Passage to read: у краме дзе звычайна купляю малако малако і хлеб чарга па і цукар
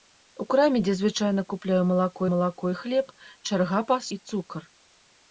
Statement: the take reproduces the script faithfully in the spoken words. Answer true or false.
true